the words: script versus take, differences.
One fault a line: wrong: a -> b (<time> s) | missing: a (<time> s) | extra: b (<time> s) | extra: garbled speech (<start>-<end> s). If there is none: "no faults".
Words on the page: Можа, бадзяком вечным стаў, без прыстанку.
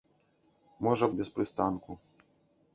missing: бадзяком вечным стаў (1.1 s)